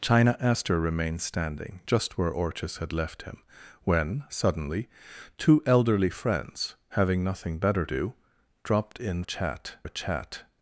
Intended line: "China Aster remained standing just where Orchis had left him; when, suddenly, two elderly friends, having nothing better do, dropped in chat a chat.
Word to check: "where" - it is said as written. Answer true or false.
true